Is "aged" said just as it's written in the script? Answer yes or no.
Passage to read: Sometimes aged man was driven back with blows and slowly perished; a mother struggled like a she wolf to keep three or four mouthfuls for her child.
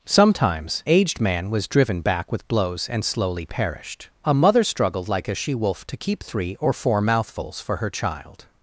yes